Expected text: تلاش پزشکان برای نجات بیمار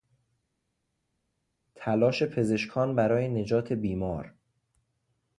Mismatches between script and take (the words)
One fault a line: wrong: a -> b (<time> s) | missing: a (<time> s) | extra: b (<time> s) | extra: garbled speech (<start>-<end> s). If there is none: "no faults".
no faults